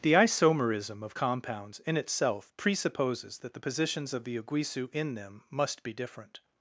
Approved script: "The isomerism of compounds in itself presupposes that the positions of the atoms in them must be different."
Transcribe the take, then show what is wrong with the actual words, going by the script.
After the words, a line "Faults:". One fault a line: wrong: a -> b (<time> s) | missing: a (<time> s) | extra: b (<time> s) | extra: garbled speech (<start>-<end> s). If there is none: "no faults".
"The isomerism of compounds in itself presupposes that the positions of the uguisu in them must be different."
Faults:
wrong: atoms -> uguisu (4.4 s)